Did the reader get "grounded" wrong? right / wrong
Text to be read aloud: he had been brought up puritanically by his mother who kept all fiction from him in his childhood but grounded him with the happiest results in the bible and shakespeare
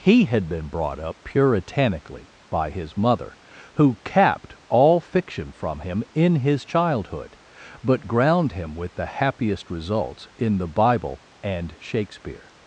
wrong